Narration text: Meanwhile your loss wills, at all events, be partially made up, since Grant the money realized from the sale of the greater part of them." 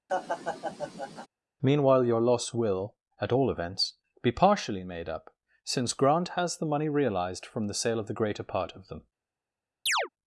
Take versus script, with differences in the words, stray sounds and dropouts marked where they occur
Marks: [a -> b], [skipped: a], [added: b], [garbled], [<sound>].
[laugh] Meanwhile your loss [wills, -> will] at all events, be partially made up, since Grant [added: has] the money realized from the sale of the greater part of them." [chirp]